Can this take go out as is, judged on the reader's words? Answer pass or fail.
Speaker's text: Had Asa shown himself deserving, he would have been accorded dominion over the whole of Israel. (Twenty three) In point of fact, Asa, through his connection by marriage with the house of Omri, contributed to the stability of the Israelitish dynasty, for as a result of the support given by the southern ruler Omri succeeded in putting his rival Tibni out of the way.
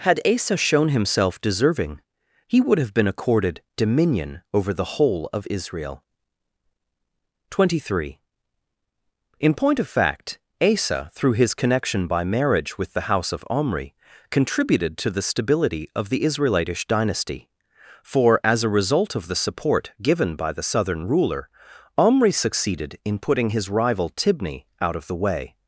pass